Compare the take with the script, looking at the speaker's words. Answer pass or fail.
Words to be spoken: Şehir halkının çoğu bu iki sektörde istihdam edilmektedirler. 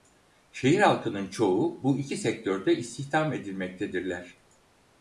pass